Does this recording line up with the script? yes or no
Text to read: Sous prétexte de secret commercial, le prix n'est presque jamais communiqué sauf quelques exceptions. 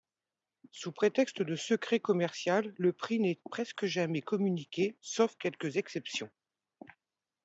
yes